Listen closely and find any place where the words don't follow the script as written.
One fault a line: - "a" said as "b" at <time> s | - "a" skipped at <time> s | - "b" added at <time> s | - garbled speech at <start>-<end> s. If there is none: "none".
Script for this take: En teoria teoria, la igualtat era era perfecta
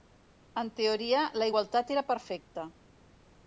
- "teoria" skipped at 1.2 s
- "era" skipped at 2.1 s